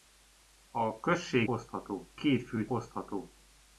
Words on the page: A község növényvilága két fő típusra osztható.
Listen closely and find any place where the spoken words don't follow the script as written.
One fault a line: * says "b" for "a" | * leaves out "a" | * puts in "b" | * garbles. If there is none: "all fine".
* says "osztható" for "növényvilága"
* leaves out "típusra"